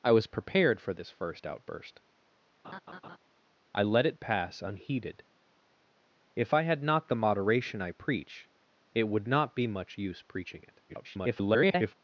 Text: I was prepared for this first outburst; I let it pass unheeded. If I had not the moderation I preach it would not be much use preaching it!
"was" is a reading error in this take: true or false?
false